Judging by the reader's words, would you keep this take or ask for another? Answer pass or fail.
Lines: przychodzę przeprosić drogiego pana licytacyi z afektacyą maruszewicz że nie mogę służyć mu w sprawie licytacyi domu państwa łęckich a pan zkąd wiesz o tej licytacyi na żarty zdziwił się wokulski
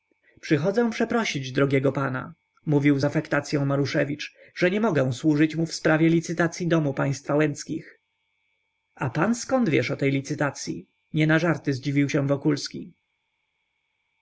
fail